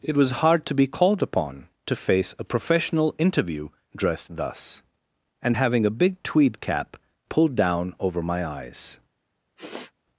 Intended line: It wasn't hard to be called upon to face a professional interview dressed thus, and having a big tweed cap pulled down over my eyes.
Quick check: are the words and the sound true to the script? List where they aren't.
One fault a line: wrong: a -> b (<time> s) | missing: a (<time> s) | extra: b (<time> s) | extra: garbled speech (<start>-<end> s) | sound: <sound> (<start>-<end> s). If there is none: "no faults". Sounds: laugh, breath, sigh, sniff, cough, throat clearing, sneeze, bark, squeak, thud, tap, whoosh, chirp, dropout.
wrong: wasn't -> was (0.2 s)
sound: sniff (9.6-9.9 s)